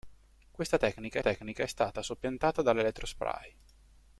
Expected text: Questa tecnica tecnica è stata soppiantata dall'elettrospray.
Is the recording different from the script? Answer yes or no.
no